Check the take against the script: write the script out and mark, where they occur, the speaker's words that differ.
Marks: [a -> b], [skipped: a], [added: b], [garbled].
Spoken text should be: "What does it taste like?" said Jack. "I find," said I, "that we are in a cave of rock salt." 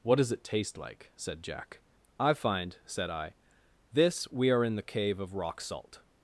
"What does it taste like?" said Jack. "I find," said I, ["that -> this] we are in [a -> the] cave of rock salt."